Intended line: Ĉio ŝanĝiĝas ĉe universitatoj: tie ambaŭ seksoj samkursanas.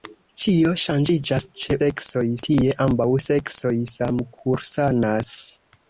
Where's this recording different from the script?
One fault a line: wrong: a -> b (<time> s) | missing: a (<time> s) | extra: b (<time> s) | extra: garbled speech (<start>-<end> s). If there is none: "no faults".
wrong: universitatoj -> seksoj (1.8 s)